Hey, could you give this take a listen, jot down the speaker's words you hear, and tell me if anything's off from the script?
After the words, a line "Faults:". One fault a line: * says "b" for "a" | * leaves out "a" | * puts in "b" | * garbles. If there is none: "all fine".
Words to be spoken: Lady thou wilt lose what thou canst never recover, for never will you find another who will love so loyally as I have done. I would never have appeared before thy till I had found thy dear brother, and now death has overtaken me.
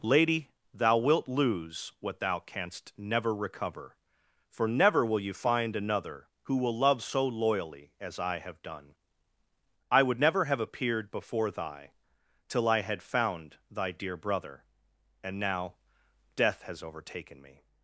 Lady thou wilt lose what thou canst never recover, for never will you find another who will love so loyally as I have done. I would never have appeared before thy till I had found thy dear brother, and now death has overtaken me.
Faults:
all fine